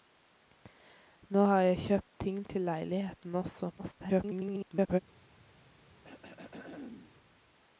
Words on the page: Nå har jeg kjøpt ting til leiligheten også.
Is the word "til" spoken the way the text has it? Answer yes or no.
yes